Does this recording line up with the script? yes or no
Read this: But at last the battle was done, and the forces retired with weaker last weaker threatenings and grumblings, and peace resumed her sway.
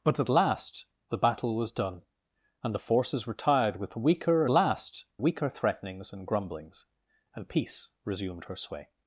yes